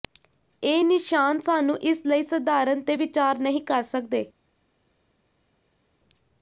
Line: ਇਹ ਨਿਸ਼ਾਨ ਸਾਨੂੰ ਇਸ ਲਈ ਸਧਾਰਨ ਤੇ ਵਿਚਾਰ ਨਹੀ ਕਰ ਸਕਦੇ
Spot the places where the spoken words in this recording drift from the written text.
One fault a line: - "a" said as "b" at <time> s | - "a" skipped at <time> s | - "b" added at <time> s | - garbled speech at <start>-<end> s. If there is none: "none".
none